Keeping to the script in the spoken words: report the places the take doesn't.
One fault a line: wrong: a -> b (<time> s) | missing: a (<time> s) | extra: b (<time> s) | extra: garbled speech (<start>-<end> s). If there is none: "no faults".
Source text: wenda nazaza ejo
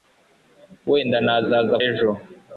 no faults